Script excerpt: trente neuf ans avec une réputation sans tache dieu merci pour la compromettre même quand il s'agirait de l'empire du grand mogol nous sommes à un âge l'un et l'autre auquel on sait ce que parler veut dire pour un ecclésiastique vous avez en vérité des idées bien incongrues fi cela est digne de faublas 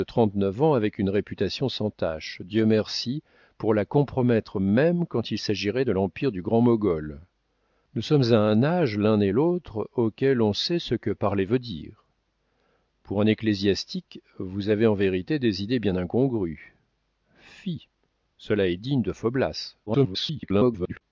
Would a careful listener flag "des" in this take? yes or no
no